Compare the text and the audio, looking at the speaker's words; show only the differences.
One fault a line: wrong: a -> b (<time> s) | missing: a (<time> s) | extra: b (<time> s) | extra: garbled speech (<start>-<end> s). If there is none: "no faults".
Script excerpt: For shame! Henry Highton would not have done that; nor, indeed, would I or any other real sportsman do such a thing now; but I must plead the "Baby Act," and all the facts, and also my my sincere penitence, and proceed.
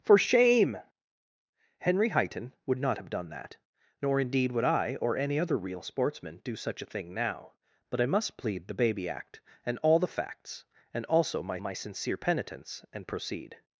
no faults